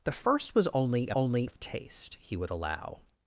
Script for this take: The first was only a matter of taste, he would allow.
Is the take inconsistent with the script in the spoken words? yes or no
yes